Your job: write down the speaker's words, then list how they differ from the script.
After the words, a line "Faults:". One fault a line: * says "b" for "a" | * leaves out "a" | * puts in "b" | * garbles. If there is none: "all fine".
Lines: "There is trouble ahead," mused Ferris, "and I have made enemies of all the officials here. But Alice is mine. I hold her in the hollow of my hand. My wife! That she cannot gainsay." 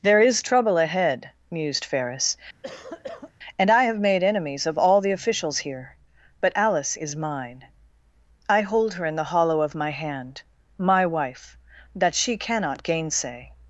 "There is trouble ahead," mused Ferris, "and I have made enemies of all the officials here. But Alice is mine. I hold her in the hollow of my hand. My wife! That she cannot gainsay."
Faults:
all fine